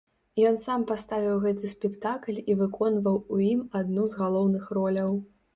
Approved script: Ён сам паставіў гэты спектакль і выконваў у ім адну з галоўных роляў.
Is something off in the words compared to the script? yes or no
no